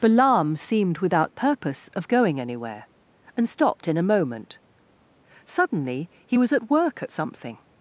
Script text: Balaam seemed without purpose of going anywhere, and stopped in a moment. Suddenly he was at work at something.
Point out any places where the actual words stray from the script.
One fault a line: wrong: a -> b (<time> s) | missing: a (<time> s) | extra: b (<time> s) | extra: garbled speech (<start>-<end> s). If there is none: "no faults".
no faults